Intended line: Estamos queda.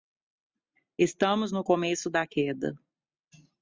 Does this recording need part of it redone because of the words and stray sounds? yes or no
yes